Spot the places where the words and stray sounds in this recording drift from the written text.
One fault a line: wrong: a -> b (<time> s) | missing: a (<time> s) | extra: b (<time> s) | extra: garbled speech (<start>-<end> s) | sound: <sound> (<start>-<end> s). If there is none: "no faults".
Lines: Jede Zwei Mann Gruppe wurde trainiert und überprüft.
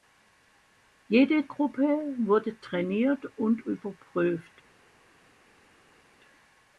missing: Zwei Mann (1.5 s)